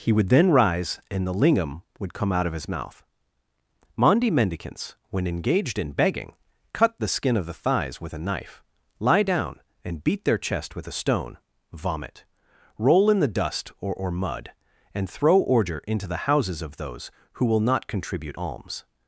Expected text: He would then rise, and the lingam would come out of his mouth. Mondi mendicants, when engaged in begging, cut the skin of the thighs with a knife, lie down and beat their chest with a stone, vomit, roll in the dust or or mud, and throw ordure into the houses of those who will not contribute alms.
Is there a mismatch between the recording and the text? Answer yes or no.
no